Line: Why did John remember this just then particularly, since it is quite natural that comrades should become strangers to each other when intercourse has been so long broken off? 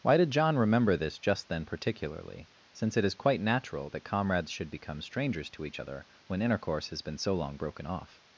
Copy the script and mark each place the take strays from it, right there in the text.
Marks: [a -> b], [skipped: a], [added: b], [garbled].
Why did John remember this just then particularly, since it is quite natural that comrades should become strangers to each other when intercourse has been so long broken off?